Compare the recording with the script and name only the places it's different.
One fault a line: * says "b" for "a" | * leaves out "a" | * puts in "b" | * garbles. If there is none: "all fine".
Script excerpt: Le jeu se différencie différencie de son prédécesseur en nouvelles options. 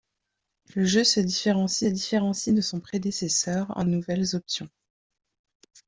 all fine